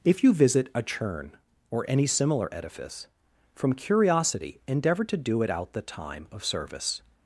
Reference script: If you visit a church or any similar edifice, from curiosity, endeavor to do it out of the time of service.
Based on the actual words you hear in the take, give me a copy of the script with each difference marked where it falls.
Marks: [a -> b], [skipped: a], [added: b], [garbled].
If you visit a [church -> churn] or any similar edifice, from curiosity, endeavor to do it out [skipped: of] the time of service.